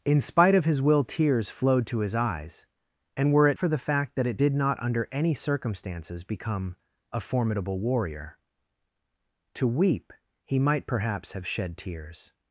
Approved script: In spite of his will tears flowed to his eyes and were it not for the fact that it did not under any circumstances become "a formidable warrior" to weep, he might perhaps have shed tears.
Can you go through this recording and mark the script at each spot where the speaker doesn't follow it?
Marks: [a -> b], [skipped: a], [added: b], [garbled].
In spite of his will tears flowed to his eyes and were it [skipped: not] for the fact that it did not under any circumstances become "a formidable warrior" to weep, he might perhaps have shed tears.